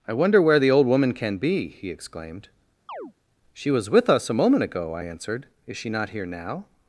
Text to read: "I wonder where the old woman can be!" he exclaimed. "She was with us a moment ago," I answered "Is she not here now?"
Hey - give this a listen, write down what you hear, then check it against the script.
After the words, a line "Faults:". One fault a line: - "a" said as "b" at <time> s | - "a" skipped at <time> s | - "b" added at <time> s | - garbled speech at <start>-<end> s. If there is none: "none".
"I wonder where the old woman can be!" he exclaimed. "She was with us a moment ago," I answered "Is she not here now?"
Faults:
none